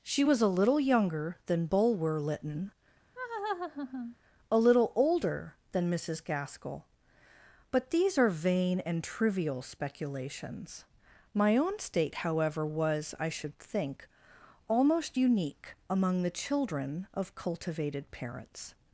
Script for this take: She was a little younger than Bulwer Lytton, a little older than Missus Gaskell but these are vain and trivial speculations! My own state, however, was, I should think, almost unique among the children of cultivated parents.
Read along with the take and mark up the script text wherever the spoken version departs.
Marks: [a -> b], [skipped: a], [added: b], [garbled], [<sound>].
She was a little younger than Bulwer Lytton, [laugh] a little older than Missus Gaskell but these are vain and trivial speculations! My own state, however, was, I should think, almost unique among the children of cultivated parents.